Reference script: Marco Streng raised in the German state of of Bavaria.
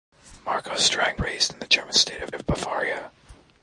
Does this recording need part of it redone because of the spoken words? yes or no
no